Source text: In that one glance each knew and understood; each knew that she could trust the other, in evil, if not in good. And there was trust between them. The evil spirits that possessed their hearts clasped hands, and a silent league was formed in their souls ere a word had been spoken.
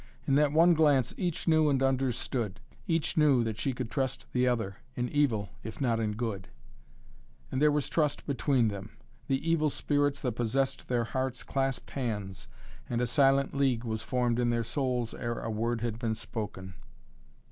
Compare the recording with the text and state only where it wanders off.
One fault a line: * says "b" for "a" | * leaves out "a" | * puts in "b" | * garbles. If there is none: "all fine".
all fine